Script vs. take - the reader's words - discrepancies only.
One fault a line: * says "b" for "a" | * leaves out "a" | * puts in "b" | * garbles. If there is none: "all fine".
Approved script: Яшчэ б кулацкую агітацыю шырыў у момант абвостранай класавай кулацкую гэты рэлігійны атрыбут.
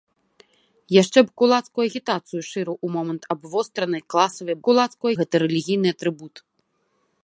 all fine